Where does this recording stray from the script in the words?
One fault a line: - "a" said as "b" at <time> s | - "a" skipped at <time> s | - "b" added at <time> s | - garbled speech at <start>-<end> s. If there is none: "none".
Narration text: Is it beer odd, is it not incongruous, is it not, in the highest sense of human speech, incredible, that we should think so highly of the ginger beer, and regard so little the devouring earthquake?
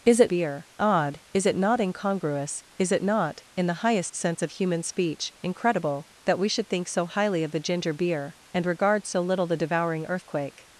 none